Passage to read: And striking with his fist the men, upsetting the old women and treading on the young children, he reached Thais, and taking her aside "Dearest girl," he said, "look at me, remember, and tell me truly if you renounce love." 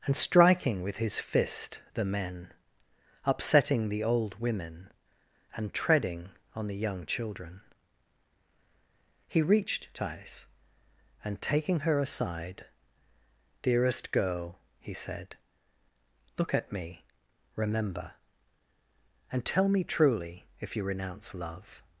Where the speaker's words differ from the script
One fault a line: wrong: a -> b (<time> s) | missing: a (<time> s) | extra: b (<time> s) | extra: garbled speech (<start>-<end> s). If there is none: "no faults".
no faults